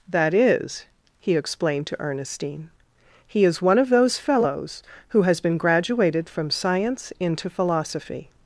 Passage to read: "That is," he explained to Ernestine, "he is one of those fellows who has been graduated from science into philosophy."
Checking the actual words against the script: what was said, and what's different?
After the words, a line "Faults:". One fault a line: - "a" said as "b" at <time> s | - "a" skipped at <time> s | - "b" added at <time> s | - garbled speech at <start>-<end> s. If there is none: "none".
"That is," he explained to Ernestine, "he is one of those fellows who has been graduated from science into philosophy."
Faults:
none